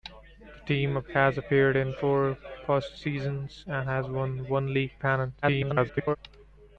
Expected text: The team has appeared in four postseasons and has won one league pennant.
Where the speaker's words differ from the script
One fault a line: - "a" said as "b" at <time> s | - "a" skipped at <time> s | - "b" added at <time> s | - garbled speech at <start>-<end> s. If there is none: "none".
- garbled speech at 5.4-6.2 s